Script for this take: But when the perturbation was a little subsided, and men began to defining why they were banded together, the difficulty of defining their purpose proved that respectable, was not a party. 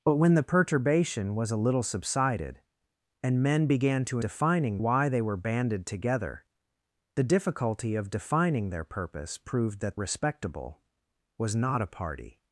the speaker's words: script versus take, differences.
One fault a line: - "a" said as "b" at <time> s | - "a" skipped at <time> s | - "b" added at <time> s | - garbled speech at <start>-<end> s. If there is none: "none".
none